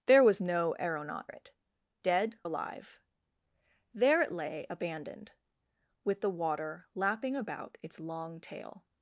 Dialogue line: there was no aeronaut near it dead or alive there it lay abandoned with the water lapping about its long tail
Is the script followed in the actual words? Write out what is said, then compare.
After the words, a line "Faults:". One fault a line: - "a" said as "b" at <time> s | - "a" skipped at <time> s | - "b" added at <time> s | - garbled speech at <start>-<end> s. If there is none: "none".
there was no aeronaut it dead alive there it lay abandoned with the water lapping about its long tail
Faults:
- "near" skipped at 1.3 s
- "or" skipped at 2.4 s